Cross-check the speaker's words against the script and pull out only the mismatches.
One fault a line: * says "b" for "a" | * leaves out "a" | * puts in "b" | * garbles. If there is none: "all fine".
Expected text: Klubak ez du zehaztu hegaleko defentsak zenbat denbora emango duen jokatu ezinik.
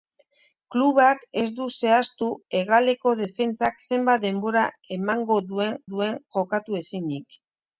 * puts in "duen"